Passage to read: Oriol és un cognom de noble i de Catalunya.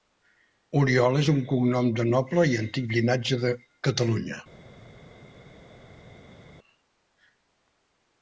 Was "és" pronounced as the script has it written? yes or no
yes